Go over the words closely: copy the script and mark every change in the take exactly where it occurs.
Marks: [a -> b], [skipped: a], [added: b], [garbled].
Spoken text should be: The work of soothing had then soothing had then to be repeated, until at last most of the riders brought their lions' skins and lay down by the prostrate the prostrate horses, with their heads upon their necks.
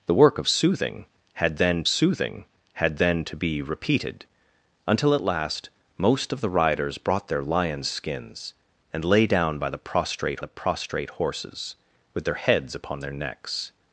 The work of soothing had then soothing had then to be repeated, until at last most of the riders brought their lions' skins and lay down by the prostrate the prostrate horses, with their heads upon their necks.